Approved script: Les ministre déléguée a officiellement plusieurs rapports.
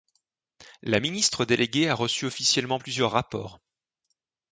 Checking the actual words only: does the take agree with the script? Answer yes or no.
no